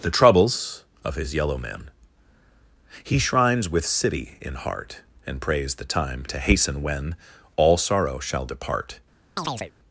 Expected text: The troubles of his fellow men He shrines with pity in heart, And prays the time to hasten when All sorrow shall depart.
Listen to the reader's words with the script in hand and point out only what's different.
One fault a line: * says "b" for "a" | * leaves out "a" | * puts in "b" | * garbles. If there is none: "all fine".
* says "yellow" for "fellow"
* says "city" for "pity"